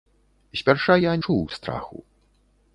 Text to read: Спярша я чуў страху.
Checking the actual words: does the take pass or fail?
pass